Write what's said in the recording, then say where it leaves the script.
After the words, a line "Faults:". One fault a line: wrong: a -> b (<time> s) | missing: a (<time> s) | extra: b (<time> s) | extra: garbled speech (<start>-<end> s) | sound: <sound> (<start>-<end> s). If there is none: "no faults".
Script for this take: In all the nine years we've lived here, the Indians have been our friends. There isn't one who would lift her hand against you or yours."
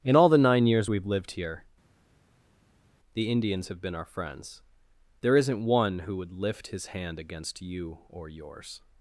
In all the nine years we've lived here, the Indians have been our friends. There isn't one who would lift his hand against you or yours."
Faults:
wrong: her -> his (6.7 s)